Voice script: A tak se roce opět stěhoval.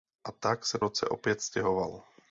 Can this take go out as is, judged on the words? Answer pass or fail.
pass